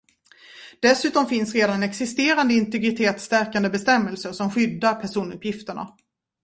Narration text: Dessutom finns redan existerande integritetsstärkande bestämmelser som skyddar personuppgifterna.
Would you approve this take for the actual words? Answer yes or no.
yes